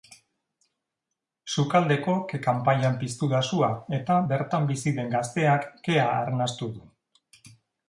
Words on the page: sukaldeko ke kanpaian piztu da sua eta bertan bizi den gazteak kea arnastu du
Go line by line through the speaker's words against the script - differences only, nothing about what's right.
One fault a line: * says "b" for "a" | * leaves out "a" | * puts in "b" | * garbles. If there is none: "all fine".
all fine